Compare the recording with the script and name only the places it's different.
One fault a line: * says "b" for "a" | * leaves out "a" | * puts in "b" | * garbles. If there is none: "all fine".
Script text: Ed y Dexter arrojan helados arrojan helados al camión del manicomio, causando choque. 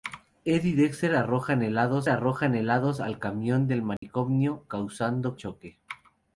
all fine